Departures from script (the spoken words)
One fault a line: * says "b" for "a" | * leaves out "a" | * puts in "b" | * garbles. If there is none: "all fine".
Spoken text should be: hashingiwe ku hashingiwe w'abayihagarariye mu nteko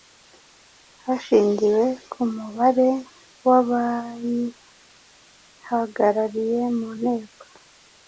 * says "mubare" for "hashingiwe"